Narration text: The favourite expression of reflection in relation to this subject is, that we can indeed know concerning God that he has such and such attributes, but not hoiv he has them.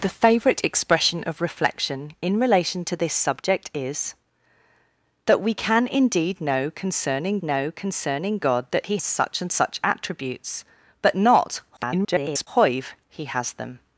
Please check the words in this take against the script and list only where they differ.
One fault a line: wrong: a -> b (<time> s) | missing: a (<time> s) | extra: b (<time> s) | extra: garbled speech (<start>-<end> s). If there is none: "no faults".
extra: know concerning (7.4 s)
missing: has (9.0 s)
extra: garbled speech (11.8-12.5 s)